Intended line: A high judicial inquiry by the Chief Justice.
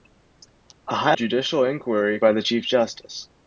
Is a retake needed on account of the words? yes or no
no